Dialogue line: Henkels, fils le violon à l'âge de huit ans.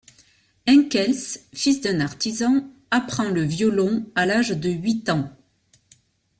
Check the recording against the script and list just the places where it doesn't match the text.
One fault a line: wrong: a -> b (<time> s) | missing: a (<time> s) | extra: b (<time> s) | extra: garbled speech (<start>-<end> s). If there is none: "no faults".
extra: d'un artisan apprend (1.8 s)